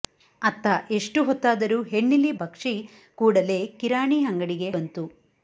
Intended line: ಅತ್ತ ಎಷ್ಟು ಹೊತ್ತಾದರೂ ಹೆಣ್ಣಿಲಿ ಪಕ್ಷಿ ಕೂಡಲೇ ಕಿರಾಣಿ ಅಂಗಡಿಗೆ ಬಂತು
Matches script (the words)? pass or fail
pass